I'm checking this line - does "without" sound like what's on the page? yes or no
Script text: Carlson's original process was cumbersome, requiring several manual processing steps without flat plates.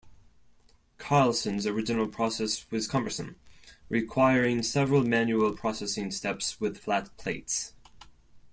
no